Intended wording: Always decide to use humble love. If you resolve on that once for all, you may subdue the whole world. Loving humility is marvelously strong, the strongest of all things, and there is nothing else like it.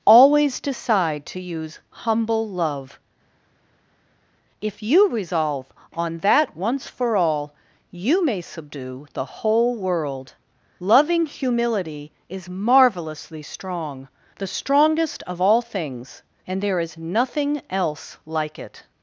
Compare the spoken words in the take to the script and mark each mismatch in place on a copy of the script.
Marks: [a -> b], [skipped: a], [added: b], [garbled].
Always decide to use humble love. If you resolve on that once for all, you may subdue the whole world. Loving humility is marvelously strong, the strongest of all things, and there is nothing else like it.